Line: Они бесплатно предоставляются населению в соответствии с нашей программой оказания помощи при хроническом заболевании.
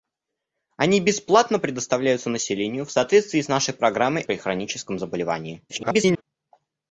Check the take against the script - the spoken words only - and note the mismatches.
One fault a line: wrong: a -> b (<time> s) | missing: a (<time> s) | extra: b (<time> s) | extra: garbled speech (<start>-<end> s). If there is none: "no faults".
missing: оказания помощи (4.2 s)
extra: garbled speech (5.7-6.2 s)